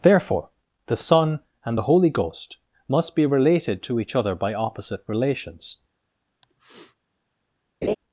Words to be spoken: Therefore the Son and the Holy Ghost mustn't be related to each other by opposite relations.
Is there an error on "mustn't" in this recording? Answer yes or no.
yes